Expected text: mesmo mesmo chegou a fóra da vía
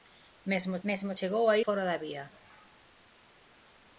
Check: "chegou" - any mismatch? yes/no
no